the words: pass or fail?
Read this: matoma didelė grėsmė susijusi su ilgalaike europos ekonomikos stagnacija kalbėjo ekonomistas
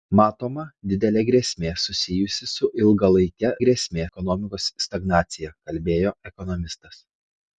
fail